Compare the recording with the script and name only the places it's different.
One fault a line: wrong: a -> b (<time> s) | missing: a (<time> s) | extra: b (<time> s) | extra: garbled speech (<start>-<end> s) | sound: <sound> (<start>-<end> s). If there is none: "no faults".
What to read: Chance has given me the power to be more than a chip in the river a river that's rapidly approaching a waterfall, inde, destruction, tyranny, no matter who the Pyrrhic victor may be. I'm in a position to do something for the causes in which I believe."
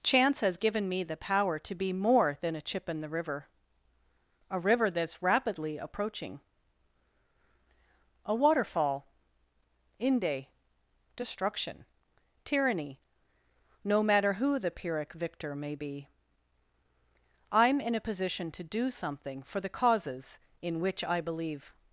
no faults